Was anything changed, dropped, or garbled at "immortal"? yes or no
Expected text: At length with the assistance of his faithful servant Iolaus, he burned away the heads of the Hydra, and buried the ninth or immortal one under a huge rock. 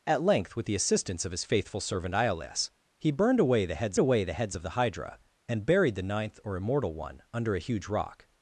no